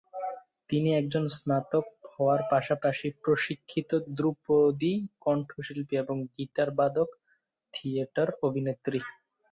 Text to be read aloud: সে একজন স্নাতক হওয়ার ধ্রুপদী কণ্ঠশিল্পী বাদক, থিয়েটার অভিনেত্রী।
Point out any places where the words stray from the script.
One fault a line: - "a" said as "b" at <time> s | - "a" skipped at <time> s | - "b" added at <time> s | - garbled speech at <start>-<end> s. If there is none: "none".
- "সে" said as "তিনি" at 0.7 s
- "পাশাপাশি প্রশিক্ষিত" added at 2.5 s
- "এবং গিটার" added at 6.0 s